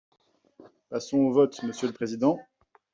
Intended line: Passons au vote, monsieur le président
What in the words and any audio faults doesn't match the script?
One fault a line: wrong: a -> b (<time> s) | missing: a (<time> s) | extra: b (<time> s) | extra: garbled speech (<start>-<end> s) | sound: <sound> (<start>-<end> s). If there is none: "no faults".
no faults